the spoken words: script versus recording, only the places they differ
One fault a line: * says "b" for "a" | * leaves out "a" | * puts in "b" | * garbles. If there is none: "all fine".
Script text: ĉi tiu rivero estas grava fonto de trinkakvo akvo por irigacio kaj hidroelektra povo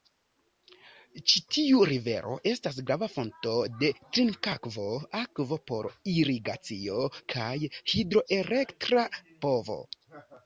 all fine